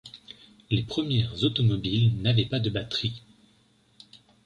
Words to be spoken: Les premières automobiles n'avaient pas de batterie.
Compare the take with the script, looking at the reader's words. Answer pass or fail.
pass